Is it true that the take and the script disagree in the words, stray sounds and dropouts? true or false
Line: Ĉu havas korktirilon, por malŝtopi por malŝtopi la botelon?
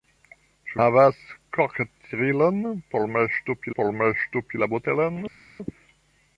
false